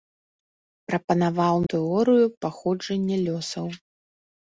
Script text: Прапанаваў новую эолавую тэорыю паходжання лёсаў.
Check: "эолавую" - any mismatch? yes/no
yes